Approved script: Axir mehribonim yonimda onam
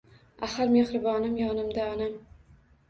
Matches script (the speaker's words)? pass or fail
pass